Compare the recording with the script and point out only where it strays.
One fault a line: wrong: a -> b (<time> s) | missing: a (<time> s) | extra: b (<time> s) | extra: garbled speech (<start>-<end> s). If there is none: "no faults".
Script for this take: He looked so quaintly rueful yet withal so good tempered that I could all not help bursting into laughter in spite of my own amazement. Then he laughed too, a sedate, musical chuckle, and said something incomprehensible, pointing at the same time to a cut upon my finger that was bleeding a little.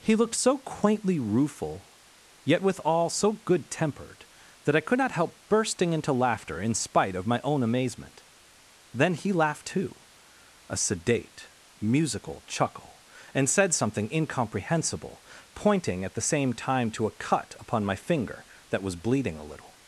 missing: all (5.0 s)